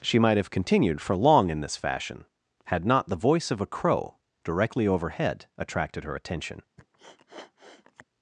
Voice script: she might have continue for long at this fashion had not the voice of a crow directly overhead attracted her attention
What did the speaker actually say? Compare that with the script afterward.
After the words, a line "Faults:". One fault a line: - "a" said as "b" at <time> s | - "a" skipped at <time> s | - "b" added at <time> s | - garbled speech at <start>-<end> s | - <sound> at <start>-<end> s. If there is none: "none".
she might have continued for long in this fashion had not the voice of a crow directly overhead attracted her attention
Faults:
- "continue" said as "continued" at 0.5 s
- "at" said as "in" at 1.5 s
- sniff at 6.8-8.0 s